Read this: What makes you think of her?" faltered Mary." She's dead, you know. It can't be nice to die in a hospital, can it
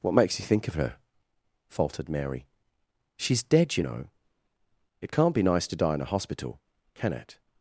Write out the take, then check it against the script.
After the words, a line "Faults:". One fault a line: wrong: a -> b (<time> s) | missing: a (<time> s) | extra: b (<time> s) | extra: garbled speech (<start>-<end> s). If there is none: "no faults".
What makes you think of her?" faltered Mary." She's dead, you know. It can't be nice to die in a hospital, can it
Faults:
no faults